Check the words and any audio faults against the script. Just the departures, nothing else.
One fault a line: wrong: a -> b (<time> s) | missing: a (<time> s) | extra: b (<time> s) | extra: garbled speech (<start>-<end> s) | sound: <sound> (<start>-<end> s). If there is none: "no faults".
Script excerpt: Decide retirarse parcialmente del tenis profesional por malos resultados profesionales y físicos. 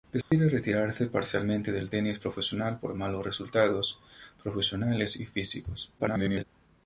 sound: dropout (0.2-0.3 s)
extra: garbled speech (6.0-6.4 s)